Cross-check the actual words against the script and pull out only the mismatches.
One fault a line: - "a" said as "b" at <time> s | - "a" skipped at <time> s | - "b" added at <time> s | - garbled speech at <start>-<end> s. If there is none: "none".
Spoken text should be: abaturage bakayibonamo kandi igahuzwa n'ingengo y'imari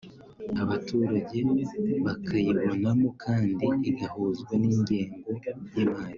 none